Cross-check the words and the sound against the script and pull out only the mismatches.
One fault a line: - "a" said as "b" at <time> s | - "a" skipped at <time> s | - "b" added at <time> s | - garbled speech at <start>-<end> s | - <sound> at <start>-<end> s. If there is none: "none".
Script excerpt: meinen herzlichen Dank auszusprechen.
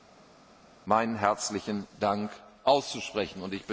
none